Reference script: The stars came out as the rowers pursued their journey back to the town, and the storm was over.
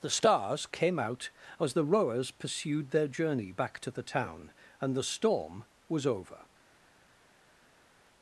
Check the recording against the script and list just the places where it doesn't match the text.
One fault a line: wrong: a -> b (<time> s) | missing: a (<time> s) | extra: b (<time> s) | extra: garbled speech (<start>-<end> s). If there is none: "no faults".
no faults